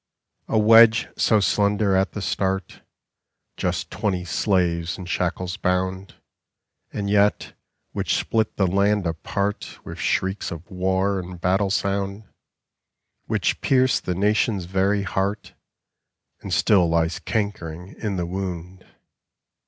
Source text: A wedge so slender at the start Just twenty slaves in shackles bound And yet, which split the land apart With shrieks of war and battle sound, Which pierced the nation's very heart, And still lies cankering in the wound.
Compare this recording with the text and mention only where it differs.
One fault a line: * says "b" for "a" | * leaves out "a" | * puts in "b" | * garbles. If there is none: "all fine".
all fine